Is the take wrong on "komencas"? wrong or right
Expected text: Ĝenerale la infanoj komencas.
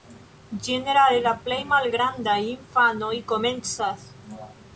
right